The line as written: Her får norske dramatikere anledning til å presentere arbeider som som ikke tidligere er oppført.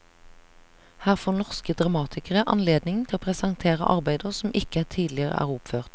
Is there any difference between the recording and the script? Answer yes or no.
yes